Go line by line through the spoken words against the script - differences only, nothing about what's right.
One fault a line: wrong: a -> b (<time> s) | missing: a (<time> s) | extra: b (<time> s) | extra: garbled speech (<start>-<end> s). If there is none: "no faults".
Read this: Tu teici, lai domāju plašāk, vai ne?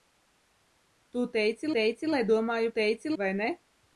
extra: teici (1.8 s)
wrong: plašāk -> teici (2.8 s)